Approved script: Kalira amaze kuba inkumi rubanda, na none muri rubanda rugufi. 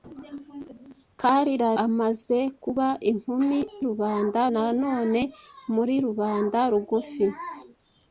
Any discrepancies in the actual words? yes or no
no